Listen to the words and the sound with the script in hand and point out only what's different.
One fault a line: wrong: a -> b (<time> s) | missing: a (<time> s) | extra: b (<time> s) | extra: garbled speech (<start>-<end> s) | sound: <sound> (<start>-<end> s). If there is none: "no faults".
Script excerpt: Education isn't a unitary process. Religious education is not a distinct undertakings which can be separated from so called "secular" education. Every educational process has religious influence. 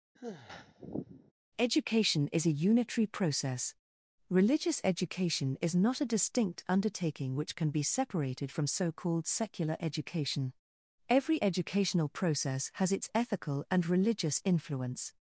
sound: sigh (0.1-1.3 s)
wrong: isn't -> is (2.3 s)
wrong: undertakings -> undertaking (6.7 s)
extra: its ethical and (12.9 s)